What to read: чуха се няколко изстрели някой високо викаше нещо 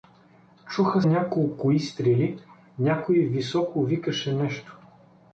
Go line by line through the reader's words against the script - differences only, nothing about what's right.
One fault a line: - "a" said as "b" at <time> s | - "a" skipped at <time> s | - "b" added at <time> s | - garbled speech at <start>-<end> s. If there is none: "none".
- "се" skipped at 1.0 s